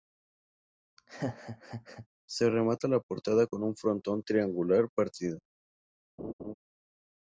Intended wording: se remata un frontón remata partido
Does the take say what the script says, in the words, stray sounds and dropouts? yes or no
no